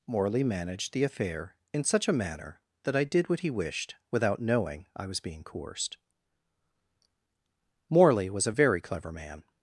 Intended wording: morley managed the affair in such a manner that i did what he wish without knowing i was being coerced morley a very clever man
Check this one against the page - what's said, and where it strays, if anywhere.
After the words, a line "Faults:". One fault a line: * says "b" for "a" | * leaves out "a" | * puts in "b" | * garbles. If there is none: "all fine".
morley managed the affair in such a manner that i did what he wished without knowing i was being coerced morley was a very clever man
Faults:
* says "wished" for "wish"
* puts in "was"